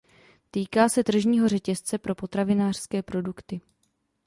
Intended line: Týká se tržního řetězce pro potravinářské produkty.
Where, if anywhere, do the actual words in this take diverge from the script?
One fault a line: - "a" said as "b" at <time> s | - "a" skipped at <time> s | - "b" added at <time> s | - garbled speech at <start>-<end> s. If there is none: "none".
none